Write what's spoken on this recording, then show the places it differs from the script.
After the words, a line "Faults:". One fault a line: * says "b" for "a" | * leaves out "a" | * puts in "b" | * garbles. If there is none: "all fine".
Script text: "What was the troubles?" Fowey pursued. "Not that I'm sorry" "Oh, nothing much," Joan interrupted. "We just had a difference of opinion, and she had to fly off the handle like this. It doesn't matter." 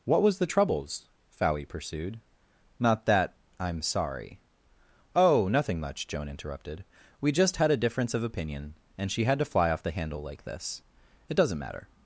"What was the troubles?" Fowey pursued. "Not that I'm sorry" "Oh, nothing much," Joan interrupted. "We just had a difference of opinion, and she had to fly off the handle like this. It doesn't matter."
Faults:
all fine